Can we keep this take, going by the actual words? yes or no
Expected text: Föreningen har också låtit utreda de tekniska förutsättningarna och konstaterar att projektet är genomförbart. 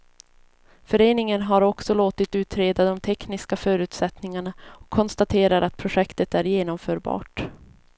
yes